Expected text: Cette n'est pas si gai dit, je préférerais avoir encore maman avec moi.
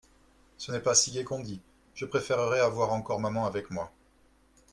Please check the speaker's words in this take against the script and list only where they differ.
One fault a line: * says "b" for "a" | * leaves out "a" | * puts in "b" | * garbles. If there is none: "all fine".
* says "Ce" for "Cette"
* puts in "qu'on"